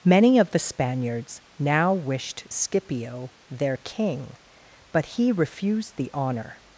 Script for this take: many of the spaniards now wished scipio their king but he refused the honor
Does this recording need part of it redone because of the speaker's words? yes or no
no